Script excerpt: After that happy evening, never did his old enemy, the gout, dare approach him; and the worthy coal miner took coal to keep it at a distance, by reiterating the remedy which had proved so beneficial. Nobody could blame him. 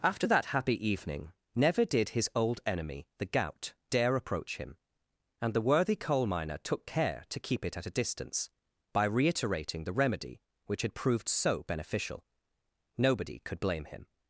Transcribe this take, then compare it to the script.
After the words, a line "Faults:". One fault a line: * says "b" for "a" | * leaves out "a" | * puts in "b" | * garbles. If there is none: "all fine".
After that happy evening, never did his old enemy, the gout, dare approach him; and the worthy coal miner took care to keep it at a distance, by reiterating the remedy which had proved so beneficial. Nobody could blame him.
Faults:
* says "care" for "coal"